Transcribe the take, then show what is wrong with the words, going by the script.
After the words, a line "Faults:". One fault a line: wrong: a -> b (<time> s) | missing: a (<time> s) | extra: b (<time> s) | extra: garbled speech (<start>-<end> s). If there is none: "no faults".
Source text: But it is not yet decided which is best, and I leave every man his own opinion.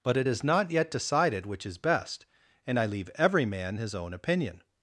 But it is not yet decided which is best, and I leave every man his own opinion.
Faults:
no faults